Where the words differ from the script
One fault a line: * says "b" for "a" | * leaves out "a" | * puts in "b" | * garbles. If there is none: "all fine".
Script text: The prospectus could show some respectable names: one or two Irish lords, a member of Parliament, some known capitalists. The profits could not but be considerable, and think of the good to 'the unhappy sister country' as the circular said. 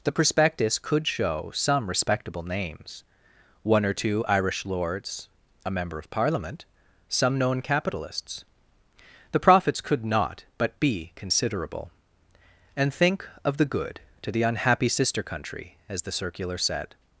all fine